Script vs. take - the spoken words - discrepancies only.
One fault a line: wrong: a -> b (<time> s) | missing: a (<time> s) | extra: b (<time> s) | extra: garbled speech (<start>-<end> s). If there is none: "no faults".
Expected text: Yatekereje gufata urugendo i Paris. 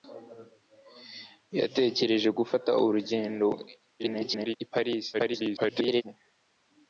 extra: garbled speech (4.0-4.6 s)
extra: garbled speech (5.1-6.0 s)